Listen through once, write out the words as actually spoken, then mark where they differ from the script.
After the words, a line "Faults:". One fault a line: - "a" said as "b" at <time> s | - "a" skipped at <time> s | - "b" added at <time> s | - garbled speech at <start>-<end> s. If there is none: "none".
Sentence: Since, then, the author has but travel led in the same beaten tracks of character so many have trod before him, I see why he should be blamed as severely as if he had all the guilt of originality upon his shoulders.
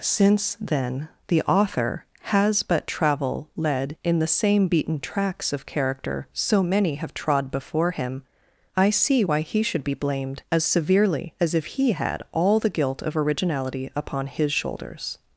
Since, then, the author has but travel led in the same beaten tracks of character so many have trod before him, I see why he should be blamed as severely as if he had all the guilt of originality upon his shoulders.
Faults:
none